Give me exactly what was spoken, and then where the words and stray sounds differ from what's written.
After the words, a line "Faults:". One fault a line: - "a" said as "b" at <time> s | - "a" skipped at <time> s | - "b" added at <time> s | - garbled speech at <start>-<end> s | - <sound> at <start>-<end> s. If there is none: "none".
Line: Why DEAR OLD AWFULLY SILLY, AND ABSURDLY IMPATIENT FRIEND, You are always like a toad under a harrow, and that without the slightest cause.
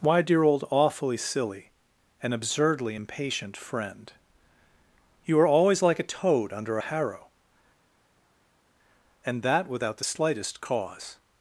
Why DEAR OLD AWFULLY SILLY, AND ABSURDLY IMPATIENT FRIEND, You are always like a toad under a harrow, and that without the slightest cause.
Faults:
none